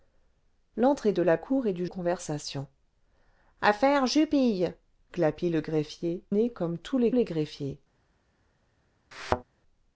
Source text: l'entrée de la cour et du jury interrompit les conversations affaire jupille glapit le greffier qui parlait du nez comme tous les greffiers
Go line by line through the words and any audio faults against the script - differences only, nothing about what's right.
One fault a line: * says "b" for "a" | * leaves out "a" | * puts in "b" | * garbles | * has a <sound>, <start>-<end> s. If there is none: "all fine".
* leaves out "jury interrompit les"
* leaves out "qui parlait du"
* puts in "les"
* has a thud, 9.1-9.4 s